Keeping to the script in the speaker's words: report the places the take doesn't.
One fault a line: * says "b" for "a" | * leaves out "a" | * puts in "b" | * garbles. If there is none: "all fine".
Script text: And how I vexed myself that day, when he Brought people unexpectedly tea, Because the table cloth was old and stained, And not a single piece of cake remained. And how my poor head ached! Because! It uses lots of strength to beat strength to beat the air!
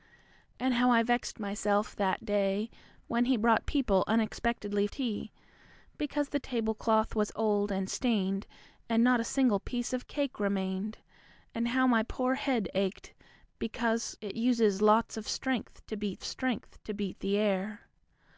all fine